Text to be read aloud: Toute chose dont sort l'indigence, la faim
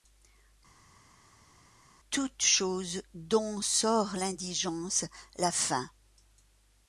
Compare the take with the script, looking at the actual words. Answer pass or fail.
pass